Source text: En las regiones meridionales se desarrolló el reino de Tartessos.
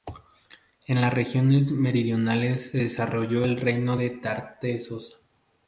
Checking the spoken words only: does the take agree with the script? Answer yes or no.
yes